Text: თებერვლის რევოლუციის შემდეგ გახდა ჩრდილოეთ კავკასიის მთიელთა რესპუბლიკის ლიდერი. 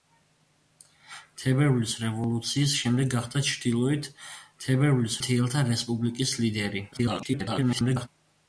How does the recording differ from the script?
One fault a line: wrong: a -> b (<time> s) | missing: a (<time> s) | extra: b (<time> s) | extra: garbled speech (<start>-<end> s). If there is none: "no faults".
wrong: კავკასიის -> თებერვლის (4.6 s)
extra: garbled speech (6.9-8.1 s)